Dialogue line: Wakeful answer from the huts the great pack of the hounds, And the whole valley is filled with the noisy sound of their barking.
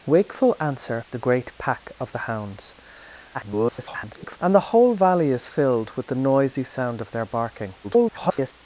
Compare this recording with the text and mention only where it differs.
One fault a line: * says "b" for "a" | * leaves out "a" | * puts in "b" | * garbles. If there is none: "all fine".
* leaves out "from the huts"
* garbles
* garbles